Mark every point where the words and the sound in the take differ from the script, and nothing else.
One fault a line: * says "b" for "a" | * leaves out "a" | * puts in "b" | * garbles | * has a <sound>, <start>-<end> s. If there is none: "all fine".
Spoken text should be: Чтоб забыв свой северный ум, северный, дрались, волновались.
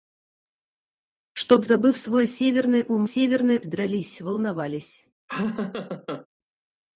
* has a laugh, 5.3-6.3 s